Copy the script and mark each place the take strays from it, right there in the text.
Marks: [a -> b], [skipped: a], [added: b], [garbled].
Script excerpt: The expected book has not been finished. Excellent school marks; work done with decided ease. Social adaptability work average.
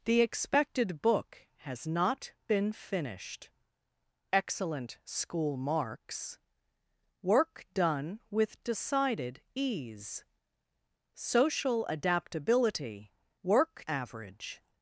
The expected book has not been finished. Excellent school marks; work done with decided ease. Social adaptability work average.